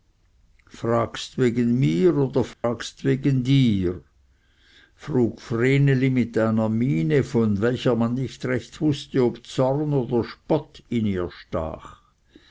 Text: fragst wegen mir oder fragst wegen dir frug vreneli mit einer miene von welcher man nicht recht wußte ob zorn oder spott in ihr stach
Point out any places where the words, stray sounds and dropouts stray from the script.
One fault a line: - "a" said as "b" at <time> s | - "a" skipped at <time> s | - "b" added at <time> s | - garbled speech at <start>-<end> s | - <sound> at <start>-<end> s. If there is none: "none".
- dropout at 2.5-2.6 s